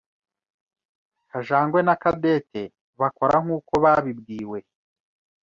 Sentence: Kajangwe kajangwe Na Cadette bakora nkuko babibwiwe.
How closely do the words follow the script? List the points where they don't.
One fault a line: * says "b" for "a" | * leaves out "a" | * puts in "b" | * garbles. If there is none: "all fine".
* leaves out "kajangwe"